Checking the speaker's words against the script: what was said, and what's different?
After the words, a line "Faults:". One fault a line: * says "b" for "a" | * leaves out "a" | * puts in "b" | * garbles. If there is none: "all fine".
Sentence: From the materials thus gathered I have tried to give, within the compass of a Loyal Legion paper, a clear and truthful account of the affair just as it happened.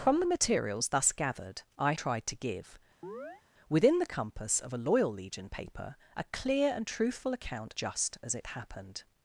From the materials thus gathered I tried to give, within the compass of a Loyal Legion paper, a clear and truthful account just as it happened.
Faults:
* leaves out "have"
* leaves out "of the affair"